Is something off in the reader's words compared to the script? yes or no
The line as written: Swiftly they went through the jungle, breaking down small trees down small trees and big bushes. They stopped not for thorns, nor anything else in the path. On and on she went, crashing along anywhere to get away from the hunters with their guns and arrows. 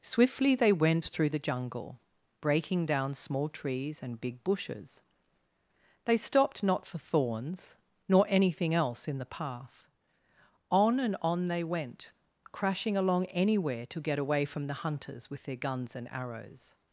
yes